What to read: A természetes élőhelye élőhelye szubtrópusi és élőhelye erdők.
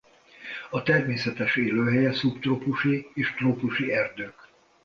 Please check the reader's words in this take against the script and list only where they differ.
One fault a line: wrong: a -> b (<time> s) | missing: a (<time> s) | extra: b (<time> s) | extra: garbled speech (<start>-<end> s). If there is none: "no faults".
missing: élőhelye (2.1 s)
wrong: élőhelye -> trópusi (3.3 s)